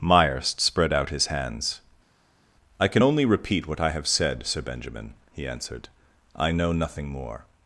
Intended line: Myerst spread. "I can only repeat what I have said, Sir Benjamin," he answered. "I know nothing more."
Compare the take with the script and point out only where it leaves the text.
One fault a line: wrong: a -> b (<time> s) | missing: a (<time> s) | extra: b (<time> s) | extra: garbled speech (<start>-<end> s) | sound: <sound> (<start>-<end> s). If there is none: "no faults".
extra: out his hands (0.9 s)